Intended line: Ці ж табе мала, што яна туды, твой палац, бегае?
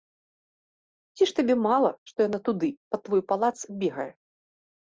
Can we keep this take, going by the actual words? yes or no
no